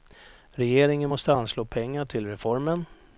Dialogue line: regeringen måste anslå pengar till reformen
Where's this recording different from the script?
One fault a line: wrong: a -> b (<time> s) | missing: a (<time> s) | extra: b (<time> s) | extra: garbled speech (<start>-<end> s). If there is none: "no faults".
no faults